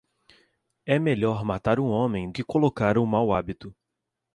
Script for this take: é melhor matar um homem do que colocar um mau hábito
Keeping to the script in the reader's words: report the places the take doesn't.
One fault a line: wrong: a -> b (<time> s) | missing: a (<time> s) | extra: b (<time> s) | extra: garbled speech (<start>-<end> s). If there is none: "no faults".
missing: do (2.3 s)